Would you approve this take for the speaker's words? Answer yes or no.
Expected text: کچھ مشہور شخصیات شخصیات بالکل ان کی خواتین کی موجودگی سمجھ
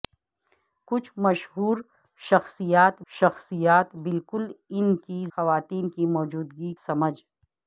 yes